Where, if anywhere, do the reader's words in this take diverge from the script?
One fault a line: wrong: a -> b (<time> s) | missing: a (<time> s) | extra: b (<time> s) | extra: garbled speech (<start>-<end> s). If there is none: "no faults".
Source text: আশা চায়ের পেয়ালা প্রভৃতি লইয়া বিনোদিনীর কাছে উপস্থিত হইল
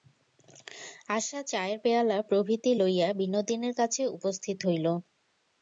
no faults